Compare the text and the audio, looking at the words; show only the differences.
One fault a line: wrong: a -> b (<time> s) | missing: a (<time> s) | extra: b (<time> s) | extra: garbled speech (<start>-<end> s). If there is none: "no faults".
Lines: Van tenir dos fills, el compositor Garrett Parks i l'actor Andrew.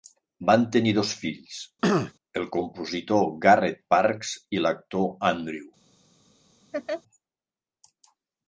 no faults